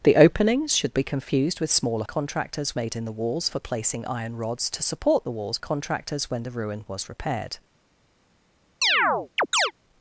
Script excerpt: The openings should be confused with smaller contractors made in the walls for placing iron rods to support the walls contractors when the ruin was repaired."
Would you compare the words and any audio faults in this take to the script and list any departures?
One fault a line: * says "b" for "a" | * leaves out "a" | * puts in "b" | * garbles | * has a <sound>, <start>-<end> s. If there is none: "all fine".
* has a chirp, 8.8-9.7 s